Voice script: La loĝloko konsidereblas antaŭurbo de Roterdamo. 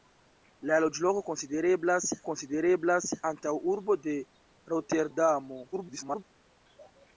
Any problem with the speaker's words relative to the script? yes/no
yes